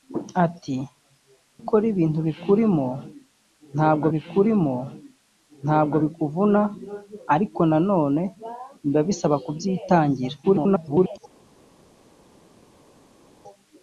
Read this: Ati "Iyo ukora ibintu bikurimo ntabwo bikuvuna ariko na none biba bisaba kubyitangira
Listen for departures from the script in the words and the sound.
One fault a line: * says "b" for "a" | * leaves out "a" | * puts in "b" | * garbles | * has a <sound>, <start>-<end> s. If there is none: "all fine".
* leaves out "Iyo"
* puts in "bikurimo ntabwo"
* garbles